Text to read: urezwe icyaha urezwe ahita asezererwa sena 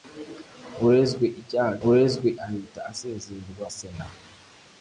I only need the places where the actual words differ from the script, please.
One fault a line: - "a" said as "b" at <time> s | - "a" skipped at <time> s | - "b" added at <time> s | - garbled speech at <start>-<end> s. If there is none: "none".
none